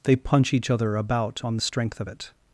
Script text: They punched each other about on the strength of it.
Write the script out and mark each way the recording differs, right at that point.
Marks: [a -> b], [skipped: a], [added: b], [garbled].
They [punched -> punch] each other about on the strength of it.